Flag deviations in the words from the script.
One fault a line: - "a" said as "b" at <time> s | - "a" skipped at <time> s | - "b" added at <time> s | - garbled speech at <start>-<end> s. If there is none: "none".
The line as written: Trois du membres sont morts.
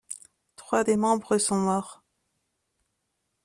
- "du" said as "des" at 0.8 s